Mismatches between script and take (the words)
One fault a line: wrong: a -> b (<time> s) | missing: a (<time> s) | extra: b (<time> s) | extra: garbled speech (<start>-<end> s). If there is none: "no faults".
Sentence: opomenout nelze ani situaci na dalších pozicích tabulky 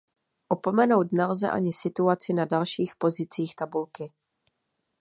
no faults